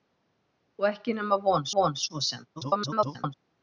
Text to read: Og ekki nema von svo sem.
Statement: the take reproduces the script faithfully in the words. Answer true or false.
false